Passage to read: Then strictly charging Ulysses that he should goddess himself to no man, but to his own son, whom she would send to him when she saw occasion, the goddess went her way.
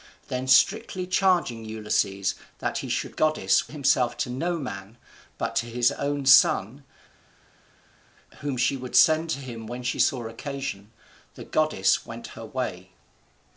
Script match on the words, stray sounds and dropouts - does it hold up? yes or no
yes